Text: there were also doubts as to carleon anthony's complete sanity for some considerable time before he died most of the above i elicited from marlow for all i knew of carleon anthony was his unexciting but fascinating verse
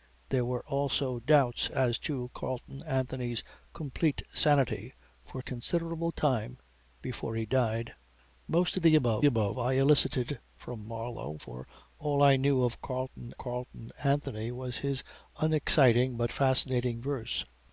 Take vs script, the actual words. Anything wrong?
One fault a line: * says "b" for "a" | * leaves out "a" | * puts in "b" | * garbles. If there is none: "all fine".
* leaves out "some"
* puts in "above"
* puts in "carleon"